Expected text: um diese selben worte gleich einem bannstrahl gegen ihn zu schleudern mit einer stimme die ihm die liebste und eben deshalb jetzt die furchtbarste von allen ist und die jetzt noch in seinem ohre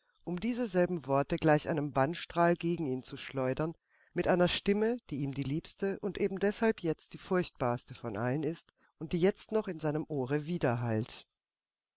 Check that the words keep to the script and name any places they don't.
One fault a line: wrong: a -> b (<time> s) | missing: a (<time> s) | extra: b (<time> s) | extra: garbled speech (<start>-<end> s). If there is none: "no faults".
no faults